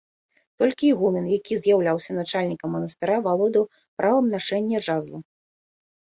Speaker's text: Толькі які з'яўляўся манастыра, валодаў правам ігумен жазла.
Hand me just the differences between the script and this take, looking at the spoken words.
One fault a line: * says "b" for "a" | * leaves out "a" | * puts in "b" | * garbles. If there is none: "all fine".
* puts in "ігумен"
* puts in "начальнікам"
* says "нашэння" for "ігумен"